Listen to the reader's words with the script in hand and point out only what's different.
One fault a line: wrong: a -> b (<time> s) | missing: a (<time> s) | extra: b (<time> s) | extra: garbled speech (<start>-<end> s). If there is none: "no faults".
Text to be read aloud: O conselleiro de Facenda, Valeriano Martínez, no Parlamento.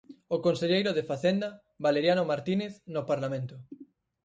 no faults